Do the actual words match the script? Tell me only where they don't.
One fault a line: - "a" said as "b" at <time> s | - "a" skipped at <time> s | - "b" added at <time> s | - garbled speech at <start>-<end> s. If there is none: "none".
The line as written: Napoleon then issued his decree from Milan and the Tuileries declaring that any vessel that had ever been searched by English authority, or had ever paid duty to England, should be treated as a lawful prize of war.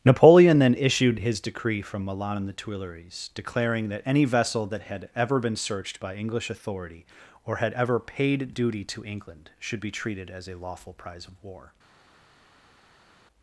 none